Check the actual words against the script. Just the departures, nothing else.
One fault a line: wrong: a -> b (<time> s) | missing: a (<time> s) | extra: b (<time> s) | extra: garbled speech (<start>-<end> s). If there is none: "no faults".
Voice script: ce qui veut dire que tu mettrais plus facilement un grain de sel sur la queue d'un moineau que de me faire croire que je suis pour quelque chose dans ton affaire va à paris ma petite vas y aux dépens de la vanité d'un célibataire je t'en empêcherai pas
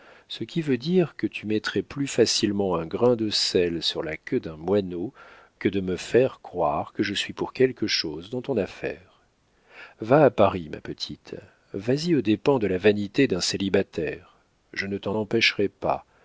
extra: ne (14.9 s)